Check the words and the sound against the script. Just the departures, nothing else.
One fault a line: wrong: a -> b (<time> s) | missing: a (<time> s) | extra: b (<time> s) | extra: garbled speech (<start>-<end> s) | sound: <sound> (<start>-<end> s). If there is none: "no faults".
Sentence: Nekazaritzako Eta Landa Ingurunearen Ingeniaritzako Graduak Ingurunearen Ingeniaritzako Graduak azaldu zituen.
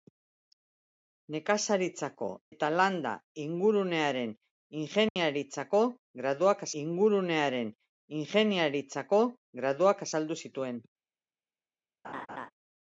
sound: dropout (5.1-5.2 s)
sound: laugh (12.0-12.5 s)